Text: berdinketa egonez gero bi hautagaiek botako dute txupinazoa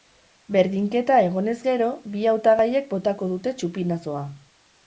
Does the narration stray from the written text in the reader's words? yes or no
no